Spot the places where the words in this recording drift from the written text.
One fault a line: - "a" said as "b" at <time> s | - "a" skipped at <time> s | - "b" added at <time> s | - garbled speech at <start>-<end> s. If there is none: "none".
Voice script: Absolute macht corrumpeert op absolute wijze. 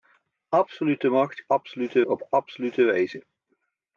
- "corrumpeert" said as "absolute" at 1.5 s